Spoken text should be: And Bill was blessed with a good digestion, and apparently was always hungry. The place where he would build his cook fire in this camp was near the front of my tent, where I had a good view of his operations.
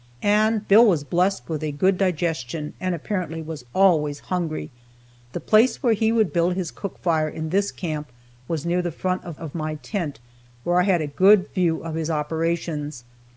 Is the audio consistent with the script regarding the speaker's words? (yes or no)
no